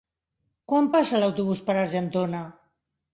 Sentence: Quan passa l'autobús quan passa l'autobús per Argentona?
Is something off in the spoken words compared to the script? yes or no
yes